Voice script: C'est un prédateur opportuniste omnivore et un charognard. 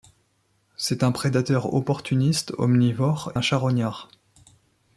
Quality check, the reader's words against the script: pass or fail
fail